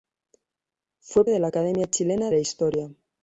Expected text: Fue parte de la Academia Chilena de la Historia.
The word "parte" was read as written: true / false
false